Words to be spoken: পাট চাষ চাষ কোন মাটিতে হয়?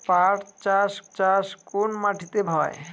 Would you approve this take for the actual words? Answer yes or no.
yes